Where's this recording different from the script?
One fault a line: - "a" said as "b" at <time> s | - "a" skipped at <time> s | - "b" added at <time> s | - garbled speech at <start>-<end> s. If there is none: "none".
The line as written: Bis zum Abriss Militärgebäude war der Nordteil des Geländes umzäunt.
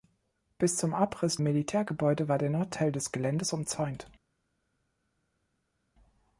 none